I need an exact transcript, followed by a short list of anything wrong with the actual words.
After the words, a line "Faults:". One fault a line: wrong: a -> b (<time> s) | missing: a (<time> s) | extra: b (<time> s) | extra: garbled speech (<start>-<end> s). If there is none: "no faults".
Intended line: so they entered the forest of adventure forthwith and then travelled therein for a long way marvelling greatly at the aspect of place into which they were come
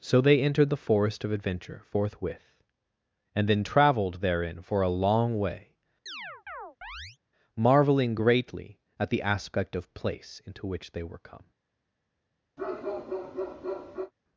so they entered the forest of adventure forthwith and then travelled therein for a long way marvelling greatly at the aspect of place into which they were come
Faults:
no faults